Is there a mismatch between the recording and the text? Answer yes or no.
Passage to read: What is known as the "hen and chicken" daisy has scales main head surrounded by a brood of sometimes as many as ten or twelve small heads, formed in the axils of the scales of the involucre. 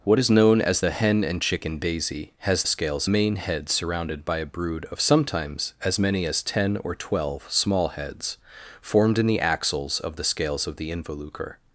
no